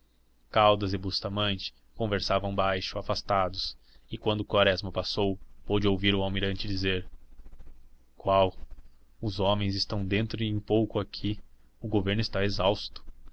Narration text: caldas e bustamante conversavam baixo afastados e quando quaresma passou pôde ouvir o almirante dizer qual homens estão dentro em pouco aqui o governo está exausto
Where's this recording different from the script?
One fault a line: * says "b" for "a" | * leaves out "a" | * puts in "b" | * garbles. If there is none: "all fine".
* puts in "os"